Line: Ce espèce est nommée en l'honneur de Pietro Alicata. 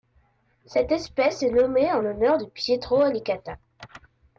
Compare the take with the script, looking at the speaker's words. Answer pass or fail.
fail